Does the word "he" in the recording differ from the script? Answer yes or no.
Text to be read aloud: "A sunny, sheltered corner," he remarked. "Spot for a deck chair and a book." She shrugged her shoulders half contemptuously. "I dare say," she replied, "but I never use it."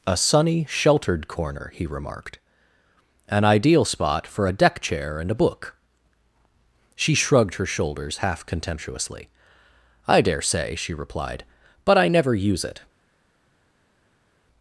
no